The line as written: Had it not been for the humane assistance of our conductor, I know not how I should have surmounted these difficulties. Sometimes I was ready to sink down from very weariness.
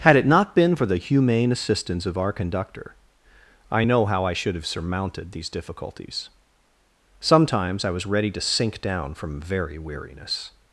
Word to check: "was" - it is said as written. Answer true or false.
true